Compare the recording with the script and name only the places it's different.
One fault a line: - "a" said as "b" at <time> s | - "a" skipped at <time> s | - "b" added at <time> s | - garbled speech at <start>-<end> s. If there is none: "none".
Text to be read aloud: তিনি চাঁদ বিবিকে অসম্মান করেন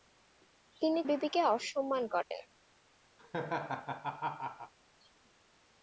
- "চাঁদ" skipped at 1.0 s